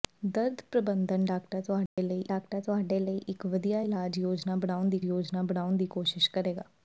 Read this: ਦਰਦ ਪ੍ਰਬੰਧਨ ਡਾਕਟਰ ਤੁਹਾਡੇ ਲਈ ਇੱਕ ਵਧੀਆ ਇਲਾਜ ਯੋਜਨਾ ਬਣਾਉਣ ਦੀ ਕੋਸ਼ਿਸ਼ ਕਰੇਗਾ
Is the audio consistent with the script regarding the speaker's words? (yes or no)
no